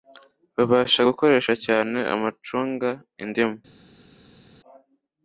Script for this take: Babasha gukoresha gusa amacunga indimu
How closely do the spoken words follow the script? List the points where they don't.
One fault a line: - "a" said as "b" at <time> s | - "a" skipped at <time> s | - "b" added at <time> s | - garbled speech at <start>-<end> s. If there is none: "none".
- "gusa" said as "cyane" at 1.7 s